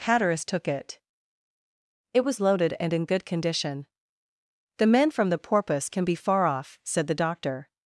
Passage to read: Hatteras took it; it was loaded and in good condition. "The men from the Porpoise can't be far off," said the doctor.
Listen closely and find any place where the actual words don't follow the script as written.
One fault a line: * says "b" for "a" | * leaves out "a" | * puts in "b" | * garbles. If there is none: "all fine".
* says "can" for "can't"